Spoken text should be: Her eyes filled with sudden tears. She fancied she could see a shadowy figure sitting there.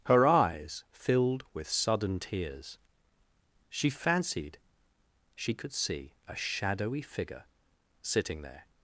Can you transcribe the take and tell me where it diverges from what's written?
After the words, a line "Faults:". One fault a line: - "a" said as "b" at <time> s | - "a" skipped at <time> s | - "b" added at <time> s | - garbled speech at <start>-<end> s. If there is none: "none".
Her eyes filled with sudden tears. She fancied she could see a shadowy figure sitting there.
Faults:
none